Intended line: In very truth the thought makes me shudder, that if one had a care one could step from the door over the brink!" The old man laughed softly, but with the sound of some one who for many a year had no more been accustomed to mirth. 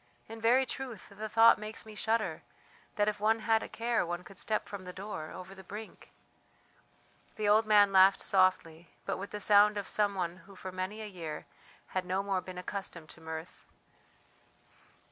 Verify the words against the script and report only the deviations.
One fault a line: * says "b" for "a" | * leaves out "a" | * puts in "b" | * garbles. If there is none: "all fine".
all fine